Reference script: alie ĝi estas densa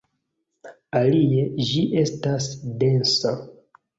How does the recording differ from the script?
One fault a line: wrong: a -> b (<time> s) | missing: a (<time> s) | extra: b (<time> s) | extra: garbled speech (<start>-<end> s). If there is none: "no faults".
no faults